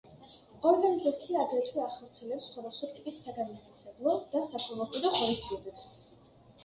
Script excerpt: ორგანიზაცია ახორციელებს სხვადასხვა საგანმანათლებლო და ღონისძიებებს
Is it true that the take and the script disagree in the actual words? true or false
true